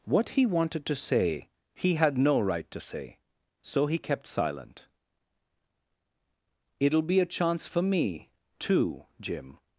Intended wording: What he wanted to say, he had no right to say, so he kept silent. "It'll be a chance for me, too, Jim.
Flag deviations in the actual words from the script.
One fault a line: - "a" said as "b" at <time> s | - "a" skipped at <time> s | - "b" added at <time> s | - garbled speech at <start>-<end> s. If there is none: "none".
none